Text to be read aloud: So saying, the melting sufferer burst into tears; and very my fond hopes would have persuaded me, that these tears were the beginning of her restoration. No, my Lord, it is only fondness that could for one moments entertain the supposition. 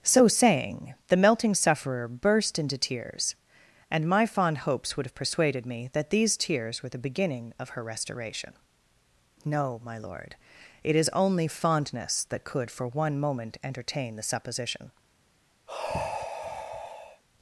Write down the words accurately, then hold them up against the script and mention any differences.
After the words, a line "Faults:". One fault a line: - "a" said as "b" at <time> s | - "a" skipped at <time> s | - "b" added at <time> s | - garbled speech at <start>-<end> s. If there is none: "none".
So saying, the melting sufferer burst into tears; and my fond hopes would have persuaded me, that these tears were the beginning of her restoration. No, my Lord, it is only fondness that could for one moment entertain the supposition.
Faults:
- "very" skipped at 4.1 s
- "moments" said as "moment" at 13.2 s